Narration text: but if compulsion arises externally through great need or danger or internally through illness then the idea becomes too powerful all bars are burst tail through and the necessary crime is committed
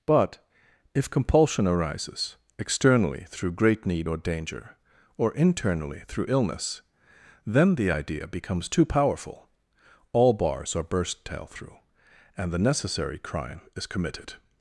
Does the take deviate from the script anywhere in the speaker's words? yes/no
no